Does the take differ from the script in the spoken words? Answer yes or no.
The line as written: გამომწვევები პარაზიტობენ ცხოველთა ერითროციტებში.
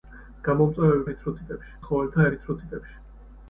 yes